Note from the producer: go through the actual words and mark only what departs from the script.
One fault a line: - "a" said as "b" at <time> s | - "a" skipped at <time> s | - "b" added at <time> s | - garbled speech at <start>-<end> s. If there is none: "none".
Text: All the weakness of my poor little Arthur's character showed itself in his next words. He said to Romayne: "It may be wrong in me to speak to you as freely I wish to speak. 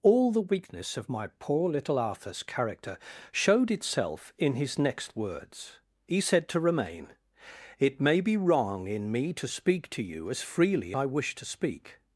none